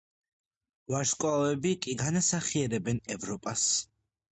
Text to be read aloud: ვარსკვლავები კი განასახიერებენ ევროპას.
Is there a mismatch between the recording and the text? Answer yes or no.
no